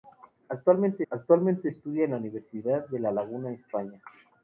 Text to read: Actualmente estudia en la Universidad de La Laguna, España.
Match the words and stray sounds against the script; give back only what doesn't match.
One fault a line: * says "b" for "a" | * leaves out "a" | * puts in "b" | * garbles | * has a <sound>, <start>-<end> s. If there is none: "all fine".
* puts in "actualmente"